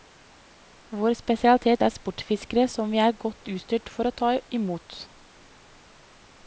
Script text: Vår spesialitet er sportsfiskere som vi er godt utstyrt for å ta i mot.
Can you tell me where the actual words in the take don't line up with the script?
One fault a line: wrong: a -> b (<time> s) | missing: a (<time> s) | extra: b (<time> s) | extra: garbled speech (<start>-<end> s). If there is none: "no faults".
no faults